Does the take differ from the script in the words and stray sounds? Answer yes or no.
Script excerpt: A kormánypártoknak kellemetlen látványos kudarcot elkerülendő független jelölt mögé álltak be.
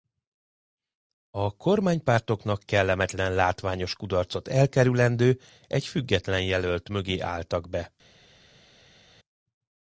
yes